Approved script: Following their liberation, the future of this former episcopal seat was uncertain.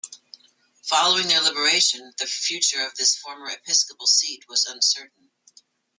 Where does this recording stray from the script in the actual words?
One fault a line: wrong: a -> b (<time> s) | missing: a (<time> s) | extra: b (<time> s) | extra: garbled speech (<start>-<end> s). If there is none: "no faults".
no faults